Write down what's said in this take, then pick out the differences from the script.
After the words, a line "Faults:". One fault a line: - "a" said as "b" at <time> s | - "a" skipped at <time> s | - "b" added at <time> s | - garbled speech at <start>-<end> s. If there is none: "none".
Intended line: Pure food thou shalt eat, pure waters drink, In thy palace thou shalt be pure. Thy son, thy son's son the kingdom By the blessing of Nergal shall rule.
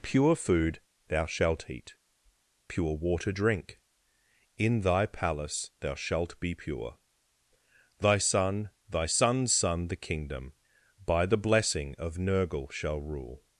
Pure food thou shalt eat, pure water drink, In thy palace thou shalt be pure. Thy son, thy son's son the kingdom By the blessing of Nergal shall rule.
Faults:
- "waters" said as "water" at 3.0 s